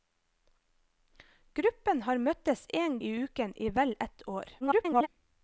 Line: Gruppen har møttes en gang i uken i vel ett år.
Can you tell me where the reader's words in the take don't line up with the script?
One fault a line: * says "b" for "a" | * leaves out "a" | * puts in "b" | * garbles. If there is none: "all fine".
* leaves out "gang"
* garbles